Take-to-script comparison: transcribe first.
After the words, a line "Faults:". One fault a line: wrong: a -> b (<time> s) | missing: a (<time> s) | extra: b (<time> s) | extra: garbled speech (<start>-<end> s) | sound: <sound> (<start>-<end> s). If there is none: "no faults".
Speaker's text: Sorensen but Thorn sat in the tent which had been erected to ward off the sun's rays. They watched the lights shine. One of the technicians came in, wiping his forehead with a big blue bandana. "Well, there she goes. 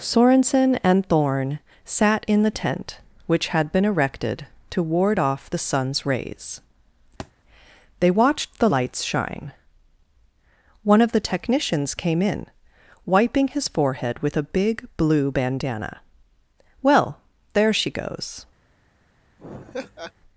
Sorensen and Thorn sat in the tent which had been erected to ward off the sun's rays. They watched the lights shine. One of the technicians came in, wiping his forehead with a big blue bandana. "Well, there she goes.
Faults:
wrong: but -> and (0.8 s)
sound: thud (7.2-7.3 s)
sound: laugh (19.4-20.1 s)